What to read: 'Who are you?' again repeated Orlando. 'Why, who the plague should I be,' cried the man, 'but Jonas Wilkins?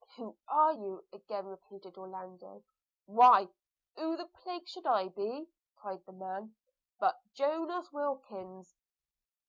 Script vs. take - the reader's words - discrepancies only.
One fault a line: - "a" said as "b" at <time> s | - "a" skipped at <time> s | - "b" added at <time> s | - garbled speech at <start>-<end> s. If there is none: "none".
none